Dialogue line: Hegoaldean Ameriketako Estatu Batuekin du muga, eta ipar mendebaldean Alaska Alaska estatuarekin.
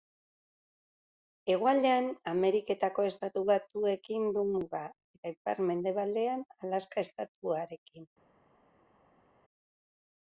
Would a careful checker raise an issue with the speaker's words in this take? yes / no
yes